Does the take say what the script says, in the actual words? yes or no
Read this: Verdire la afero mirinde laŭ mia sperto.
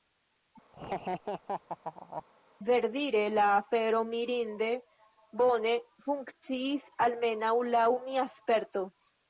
no